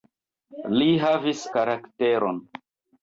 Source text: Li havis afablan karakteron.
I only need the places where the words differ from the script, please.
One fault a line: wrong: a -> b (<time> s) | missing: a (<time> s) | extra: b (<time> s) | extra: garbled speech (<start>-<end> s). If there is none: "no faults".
missing: afablan (1.4 s)